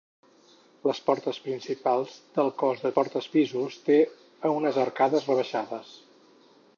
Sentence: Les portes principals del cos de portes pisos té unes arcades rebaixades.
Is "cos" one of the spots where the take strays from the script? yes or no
no